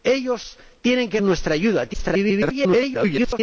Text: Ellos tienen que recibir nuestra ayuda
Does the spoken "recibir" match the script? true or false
false